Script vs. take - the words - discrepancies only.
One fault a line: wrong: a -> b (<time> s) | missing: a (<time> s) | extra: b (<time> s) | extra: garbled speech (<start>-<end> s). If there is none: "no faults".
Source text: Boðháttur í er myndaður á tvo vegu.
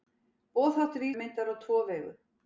no faults